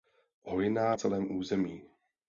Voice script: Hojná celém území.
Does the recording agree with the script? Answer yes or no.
yes